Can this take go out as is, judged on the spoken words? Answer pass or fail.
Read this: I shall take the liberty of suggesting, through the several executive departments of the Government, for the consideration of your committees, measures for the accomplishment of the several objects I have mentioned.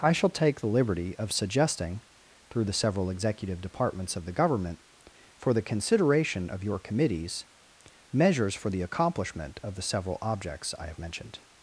pass